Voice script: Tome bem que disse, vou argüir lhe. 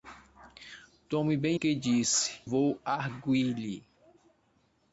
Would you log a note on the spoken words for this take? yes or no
no